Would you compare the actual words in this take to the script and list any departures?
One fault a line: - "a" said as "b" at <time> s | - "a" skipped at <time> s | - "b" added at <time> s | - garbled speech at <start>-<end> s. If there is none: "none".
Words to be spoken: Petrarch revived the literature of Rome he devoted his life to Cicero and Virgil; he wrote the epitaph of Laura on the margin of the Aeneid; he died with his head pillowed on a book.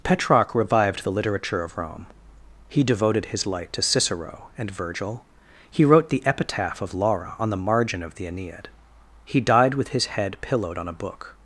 - "life" said as "light" at 3.5 s